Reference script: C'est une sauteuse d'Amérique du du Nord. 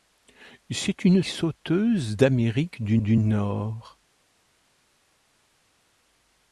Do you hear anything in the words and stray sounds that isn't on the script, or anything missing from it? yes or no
no